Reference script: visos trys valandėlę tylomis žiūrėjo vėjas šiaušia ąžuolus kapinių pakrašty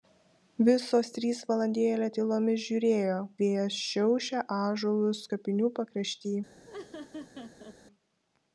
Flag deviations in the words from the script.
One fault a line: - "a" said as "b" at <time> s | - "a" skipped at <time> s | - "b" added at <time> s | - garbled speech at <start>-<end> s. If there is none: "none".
none